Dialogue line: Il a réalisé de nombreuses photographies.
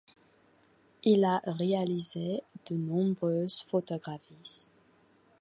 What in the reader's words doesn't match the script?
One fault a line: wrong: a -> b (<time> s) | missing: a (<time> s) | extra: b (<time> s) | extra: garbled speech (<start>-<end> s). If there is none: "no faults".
no faults